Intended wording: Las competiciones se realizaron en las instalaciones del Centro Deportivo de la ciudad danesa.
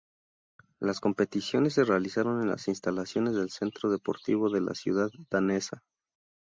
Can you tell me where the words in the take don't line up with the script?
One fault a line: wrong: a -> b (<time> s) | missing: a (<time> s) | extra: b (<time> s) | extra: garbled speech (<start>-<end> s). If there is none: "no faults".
no faults